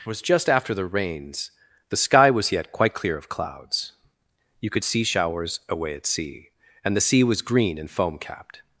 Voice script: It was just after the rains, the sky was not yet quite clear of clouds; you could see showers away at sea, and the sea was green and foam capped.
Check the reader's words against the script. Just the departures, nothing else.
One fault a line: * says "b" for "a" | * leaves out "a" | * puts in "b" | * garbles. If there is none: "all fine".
* leaves out "not"